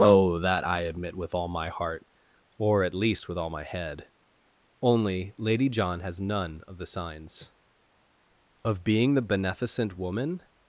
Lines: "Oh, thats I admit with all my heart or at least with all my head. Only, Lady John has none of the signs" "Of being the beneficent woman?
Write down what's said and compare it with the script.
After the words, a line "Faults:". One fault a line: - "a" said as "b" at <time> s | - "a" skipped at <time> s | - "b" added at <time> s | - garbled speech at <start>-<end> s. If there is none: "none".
"Oh, that I admit with all my heart or at least with all my head. Only, Lady John has none of the signs" "Of being the beneficent woman?
Faults:
- "thats" said as "that" at 0.4 s